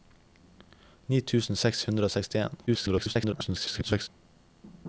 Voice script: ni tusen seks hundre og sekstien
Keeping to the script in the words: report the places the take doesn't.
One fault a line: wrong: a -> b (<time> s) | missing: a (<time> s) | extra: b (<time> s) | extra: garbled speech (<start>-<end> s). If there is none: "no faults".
extra: garbled speech (2.7-4.1 s)